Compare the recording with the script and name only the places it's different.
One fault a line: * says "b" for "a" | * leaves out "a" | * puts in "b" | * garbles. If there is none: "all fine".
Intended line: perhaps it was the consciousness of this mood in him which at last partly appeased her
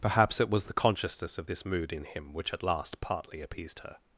all fine